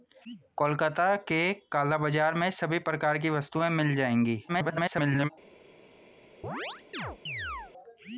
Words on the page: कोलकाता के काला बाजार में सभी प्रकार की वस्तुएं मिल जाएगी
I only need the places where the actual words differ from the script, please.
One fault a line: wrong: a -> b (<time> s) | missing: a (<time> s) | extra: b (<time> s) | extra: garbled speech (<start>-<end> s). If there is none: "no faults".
extra: garbled speech (4.5-5.3 s)